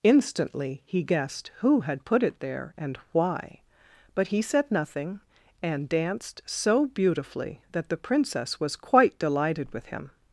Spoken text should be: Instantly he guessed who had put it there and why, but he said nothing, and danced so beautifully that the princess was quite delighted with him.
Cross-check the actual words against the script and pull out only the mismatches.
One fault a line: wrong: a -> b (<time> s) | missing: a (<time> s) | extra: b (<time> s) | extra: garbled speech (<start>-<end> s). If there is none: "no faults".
no faults